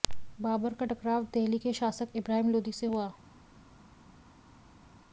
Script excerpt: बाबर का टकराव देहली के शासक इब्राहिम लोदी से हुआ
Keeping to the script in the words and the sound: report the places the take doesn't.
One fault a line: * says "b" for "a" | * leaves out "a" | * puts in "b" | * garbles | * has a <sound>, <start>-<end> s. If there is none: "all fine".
all fine